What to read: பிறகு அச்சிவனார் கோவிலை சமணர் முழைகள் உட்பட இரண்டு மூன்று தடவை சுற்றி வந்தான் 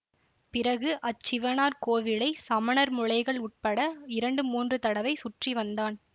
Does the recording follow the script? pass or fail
pass